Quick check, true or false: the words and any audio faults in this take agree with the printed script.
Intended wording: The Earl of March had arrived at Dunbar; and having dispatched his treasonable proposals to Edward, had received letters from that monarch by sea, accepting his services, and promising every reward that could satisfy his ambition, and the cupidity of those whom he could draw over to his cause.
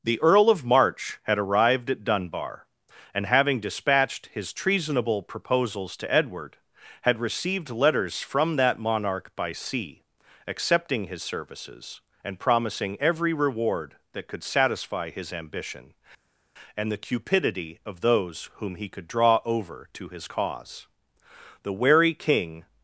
false